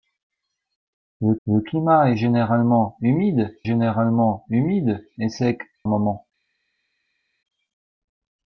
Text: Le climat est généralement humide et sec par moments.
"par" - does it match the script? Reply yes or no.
no